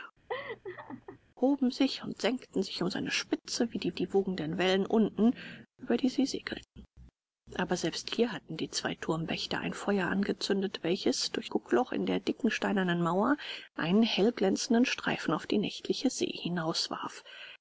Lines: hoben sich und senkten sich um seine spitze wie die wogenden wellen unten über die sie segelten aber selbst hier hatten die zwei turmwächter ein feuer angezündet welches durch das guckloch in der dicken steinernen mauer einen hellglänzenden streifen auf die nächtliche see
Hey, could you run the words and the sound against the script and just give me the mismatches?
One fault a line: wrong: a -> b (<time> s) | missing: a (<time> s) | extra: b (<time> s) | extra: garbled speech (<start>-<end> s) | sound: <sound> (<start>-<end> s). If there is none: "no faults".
sound: laugh (0.3-1.2 s)
extra: die (3.9 s)
missing: das (11.5 s)